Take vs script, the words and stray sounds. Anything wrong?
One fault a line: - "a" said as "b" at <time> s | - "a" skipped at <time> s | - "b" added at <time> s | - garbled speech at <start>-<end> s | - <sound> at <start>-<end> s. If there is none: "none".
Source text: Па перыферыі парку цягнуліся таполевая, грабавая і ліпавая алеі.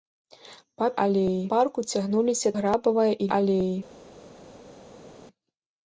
- "перыферыі" said as "алеі" at 1.1 s
- "таполевая" skipped at 2.5 s
- "ліпавая" skipped at 3.3 s